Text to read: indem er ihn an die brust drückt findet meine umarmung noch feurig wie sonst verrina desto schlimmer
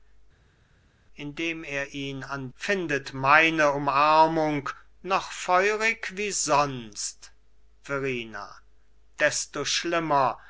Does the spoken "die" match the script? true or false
false